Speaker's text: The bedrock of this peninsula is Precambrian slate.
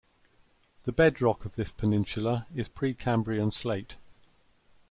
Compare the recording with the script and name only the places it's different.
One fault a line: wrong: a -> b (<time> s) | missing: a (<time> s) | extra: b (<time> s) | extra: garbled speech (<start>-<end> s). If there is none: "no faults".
no faults